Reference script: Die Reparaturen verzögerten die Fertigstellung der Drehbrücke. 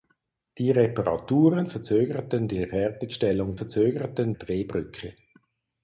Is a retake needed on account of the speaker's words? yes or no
yes